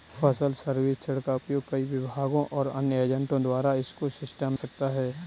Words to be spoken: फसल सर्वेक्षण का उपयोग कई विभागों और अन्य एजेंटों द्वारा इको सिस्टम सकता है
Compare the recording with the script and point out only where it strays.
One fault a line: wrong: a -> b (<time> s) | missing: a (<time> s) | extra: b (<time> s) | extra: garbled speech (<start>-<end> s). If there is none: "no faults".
no faults